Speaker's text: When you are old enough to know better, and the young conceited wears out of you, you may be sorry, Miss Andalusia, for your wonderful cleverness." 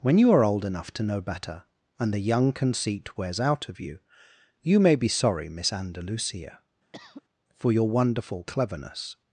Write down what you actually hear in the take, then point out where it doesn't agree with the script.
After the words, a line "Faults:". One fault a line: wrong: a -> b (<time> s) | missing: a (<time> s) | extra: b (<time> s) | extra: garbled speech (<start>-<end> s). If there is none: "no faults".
When you are old enough to know better, and the young conceit wears out of you, you may be sorry, Miss Andalusia, for your wonderful cleverness."
Faults:
wrong: conceited -> conceit (2.5 s)